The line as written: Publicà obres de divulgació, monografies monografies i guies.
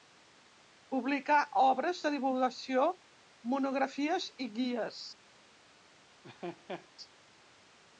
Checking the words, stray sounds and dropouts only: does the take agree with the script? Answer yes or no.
no